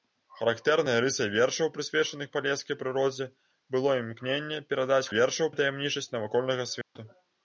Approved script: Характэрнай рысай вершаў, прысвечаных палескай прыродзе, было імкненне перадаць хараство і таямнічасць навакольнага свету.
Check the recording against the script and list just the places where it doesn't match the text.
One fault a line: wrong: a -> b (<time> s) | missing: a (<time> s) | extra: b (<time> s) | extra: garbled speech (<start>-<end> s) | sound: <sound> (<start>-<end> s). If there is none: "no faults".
wrong: хараство -> вершаў (5.1 s)
sound: dropout (6.8-7.0 s)